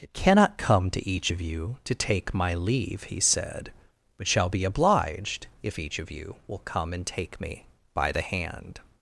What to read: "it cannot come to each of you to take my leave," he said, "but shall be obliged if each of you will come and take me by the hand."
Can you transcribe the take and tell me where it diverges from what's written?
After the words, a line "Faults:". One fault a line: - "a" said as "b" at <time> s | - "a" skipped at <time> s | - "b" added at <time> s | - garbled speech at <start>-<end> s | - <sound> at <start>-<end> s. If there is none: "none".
"it cannot come to each of you to take my leave," he said, "but shall be obliged if each of you will come and take me by the hand."
Faults:
none